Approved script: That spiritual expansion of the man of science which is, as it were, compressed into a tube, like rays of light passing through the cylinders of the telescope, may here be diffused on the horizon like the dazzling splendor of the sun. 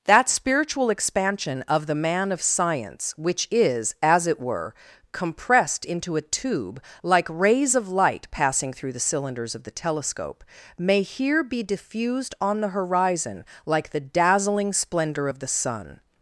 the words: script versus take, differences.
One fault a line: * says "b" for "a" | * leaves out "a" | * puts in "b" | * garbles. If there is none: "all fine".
all fine